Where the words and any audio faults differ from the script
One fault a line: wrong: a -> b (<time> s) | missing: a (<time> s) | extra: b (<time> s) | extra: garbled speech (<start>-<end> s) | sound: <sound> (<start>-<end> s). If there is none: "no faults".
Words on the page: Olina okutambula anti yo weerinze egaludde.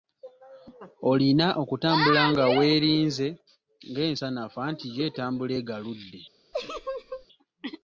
extra: nga weerinze ng'ensanafu (2.3 s)
wrong: weerinze -> etambula (5.1 s)
sound: laugh (6.5-7.3 s)